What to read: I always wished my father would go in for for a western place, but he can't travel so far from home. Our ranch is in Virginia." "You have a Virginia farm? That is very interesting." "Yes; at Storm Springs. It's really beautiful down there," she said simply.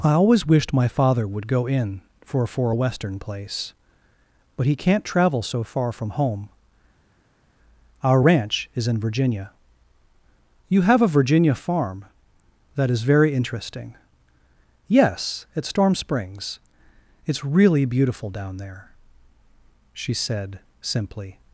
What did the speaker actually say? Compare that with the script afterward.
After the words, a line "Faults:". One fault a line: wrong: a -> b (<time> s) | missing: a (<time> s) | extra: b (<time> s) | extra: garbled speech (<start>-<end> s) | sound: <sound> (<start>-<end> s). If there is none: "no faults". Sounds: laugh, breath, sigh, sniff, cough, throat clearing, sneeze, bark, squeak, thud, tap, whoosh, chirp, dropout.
I always wished my father would go in for for a western place, but he can't travel so far from home. Our ranch is in Virginia." "You have a Virginia farm? That is very interesting." "Yes; at Storm Springs. It's really beautiful down there," she said simply.
Faults:
no faults